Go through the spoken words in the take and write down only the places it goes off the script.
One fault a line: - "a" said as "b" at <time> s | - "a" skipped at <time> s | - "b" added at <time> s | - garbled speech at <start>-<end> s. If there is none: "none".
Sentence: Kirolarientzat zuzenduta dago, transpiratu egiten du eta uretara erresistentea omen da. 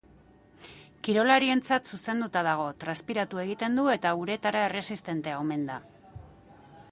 none